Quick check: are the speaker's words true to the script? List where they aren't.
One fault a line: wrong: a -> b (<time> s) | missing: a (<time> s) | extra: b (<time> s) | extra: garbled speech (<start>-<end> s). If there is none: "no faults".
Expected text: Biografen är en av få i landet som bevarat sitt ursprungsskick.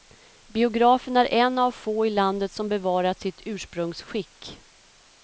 no faults